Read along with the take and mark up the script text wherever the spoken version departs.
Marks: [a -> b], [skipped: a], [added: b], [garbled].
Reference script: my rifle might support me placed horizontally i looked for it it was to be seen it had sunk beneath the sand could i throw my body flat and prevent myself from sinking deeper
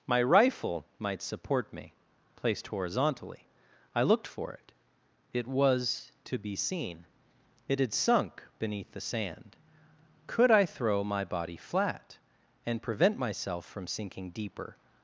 my rifle might support me placed horizontally i looked for it it was to be seen it had sunk beneath the sand could i throw my body flat and prevent myself from sinking deeper